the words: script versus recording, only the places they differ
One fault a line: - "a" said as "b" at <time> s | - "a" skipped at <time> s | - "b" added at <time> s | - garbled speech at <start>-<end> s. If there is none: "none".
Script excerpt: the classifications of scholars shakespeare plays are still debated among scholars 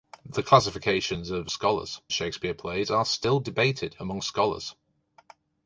none